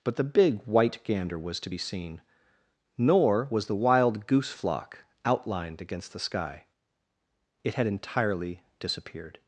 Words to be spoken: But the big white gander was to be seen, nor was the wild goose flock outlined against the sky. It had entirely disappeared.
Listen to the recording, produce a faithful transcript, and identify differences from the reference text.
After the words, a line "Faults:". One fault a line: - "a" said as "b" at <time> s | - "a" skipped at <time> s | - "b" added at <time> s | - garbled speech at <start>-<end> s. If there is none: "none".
But the big white gander was to be seen, nor was the wild goose flock outlined against the sky. It had entirely disappeared.
Faults:
none